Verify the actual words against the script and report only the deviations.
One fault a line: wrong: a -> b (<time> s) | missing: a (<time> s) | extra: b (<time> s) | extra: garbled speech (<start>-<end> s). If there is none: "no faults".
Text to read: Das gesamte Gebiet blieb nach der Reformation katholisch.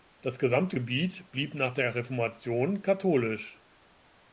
no faults